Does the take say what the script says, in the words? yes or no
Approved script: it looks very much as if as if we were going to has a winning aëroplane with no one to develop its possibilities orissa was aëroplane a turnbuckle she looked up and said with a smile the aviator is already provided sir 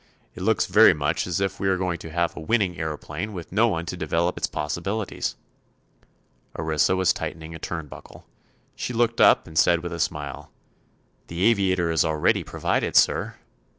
no